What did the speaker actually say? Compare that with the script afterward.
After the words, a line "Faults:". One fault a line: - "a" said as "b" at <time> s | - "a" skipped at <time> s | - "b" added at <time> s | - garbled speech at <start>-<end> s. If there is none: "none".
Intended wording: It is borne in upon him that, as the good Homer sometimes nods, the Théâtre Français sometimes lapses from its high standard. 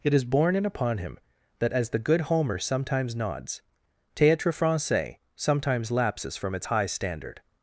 It is borne in upon him that, as the good Homer sometimes nods, Théâtre Français sometimes lapses from its high standard.
Faults:
- "the" skipped at 3.6 s